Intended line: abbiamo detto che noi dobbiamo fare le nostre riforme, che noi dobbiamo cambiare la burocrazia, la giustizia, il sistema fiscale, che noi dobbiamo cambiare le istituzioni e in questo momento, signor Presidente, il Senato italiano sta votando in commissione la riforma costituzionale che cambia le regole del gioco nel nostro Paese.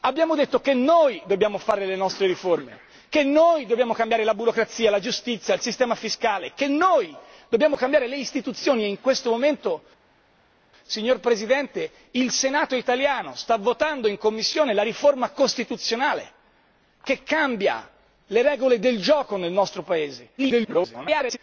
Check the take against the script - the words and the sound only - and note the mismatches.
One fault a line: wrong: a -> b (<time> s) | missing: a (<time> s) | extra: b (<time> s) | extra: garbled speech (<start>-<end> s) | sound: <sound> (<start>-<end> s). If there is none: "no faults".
extra: garbled speech (20.4-21.4 s)